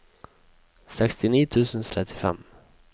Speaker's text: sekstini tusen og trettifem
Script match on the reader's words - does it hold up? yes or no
yes